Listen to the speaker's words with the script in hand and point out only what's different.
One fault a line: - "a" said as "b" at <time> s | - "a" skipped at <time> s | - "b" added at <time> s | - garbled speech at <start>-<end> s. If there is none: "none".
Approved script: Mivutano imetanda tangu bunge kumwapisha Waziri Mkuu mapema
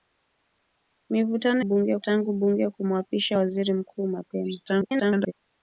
- "imetanda" said as "bunge" at 1.6 s
- garbled speech at 4.7-5.3 s